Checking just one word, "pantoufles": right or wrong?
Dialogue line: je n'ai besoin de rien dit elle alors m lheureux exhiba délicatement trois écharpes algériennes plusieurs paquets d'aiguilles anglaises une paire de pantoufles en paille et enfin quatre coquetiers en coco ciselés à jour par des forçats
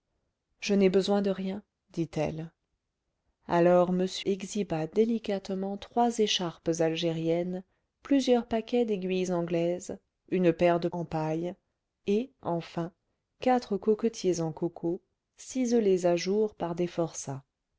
wrong